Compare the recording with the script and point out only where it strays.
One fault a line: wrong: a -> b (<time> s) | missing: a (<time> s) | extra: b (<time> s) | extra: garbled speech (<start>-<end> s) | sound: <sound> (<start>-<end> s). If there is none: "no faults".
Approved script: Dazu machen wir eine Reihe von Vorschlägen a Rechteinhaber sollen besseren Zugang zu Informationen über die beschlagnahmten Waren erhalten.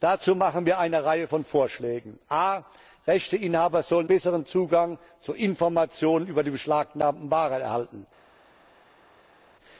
no faults